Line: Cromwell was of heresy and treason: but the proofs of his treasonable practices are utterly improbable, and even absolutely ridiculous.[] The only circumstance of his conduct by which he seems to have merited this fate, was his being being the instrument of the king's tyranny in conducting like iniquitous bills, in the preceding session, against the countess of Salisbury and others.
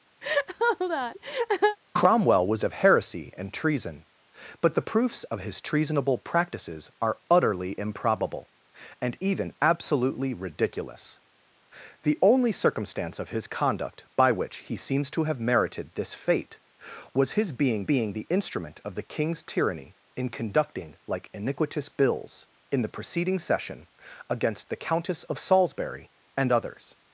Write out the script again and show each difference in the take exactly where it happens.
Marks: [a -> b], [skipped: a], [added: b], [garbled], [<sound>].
[laugh] Cromwell was of heresy and treason: but the proofs of his treasonable practices are utterly improbable, and even absolutely ridiculous.[] The only circumstance of his conduct by which he seems to have merited this fate, was his being being the instrument of the king's tyranny in conducting like iniquitous bills, in the preceding session, against the countess of Salisbury and others.